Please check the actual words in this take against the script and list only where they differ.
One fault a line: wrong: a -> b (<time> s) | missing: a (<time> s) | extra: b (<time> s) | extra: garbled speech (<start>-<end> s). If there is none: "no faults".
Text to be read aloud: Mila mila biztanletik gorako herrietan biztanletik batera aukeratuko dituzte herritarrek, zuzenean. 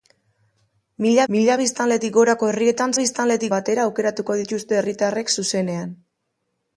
no faults